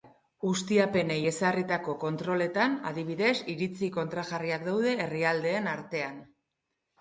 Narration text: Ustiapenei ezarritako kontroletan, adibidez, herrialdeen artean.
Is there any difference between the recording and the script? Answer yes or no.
yes